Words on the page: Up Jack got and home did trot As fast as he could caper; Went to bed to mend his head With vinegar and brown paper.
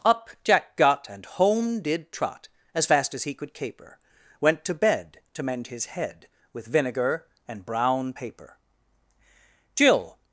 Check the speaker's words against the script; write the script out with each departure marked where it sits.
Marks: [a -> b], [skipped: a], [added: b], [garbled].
Up Jack got and home did trot As fast as he could caper; Went to bed to mend his head With vinegar and brown paper. [added: Jill]